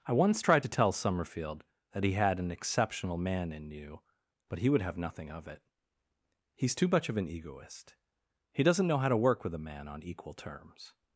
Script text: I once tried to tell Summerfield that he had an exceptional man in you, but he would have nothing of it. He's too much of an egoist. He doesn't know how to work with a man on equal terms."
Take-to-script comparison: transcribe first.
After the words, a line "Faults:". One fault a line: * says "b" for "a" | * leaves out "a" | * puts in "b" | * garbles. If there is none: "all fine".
I once tried to tell Summerfield that he had an exceptional man in you, but he would have nothing of it. He's too much of an egoist. He doesn't know how to work with a man on equal terms."
Faults:
all fine